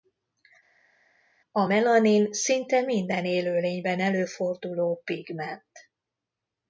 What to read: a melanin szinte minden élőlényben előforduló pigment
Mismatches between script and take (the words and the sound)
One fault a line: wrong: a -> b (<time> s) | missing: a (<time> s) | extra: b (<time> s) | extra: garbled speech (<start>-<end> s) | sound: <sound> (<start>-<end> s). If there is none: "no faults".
no faults